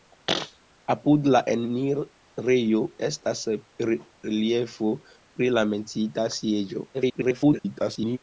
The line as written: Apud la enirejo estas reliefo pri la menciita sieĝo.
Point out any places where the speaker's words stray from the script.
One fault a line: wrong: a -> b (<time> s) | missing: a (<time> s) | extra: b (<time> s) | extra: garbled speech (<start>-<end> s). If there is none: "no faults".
extra: garbled speech (6.9-8.2 s)